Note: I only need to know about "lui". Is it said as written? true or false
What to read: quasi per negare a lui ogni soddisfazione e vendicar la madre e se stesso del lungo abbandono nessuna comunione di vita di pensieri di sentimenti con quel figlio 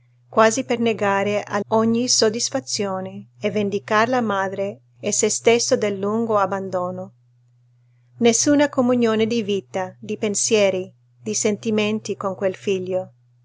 false